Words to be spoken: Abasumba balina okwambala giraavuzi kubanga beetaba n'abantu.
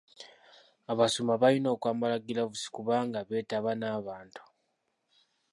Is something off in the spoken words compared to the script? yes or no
no